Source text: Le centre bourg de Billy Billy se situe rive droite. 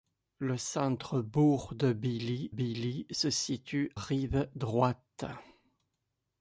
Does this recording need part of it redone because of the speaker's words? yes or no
no